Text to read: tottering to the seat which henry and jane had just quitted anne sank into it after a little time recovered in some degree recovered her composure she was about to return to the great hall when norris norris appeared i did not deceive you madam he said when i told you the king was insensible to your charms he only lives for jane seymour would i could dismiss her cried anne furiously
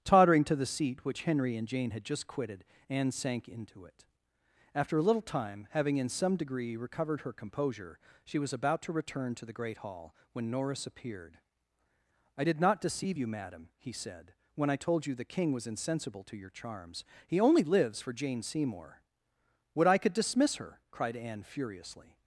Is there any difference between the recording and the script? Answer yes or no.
yes